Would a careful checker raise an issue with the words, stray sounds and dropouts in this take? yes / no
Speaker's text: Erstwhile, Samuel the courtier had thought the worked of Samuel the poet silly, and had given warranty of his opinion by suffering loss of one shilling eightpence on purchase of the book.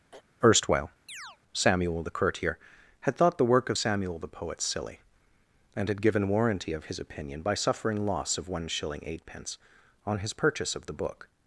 yes